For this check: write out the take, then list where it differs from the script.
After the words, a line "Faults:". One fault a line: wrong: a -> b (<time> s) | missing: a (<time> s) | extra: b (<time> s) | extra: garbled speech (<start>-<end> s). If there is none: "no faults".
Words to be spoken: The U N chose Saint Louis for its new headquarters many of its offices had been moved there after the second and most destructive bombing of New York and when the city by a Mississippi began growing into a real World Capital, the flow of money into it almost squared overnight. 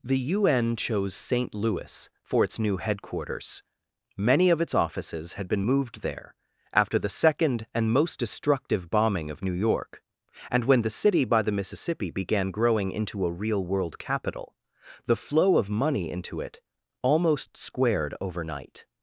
The U N chose Saint Louis for its new headquarters many of its offices had been moved there after the second and most destructive bombing of New York and when the city by the Mississippi began growing into a real World Capital, the flow of money into it almost squared overnight.
Faults:
wrong: a -> the (11.4 s)